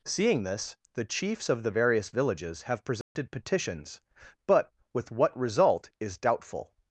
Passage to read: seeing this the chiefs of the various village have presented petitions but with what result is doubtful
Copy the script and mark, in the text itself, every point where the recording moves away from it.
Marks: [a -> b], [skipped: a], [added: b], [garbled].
seeing this the chiefs of the various [village -> villages] have presented petitions but with what result is doubtful